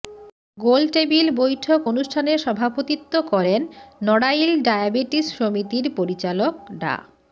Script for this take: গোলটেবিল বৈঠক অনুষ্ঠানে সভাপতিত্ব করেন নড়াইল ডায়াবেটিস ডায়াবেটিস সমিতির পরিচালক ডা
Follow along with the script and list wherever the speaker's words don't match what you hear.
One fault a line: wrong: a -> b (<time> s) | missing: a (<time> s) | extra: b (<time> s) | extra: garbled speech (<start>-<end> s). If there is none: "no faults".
missing: ডায়াবেটিস (5.3 s)